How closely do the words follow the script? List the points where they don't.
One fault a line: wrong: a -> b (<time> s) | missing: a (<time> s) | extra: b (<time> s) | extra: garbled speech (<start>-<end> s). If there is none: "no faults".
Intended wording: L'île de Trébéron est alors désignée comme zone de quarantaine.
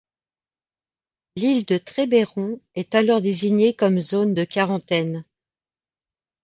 no faults